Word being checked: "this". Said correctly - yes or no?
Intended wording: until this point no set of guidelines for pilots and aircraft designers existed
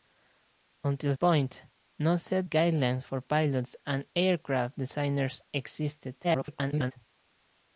no